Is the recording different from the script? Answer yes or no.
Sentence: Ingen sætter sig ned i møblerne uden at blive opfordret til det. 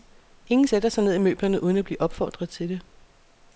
no